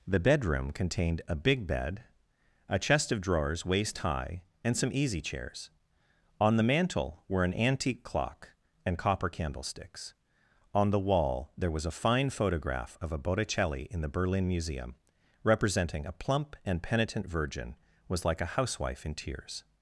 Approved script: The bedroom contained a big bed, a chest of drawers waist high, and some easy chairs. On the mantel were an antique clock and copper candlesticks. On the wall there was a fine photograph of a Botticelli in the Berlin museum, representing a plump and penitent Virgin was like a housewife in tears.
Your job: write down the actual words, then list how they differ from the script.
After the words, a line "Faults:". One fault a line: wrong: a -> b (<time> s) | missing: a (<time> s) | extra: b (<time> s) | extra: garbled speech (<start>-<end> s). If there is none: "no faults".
The bedroom contained a big bed, a chest of drawers waist high, and some easy chairs. On the mantel were an antique clock and copper candlesticks. On the wall there was a fine photograph of a Botticelli in the Berlin museum, representing a plump and penitent Virgin was like a housewife in tears.
Faults:
no faults